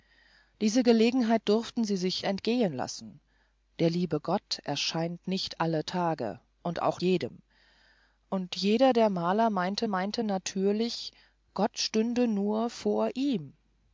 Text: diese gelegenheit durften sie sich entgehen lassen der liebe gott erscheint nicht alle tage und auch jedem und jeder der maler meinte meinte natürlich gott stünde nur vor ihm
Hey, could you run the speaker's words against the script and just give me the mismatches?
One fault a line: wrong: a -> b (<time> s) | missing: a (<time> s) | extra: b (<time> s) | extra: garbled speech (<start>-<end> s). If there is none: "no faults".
no faults